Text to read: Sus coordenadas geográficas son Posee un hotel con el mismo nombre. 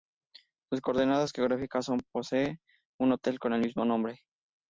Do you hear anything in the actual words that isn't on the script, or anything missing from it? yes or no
no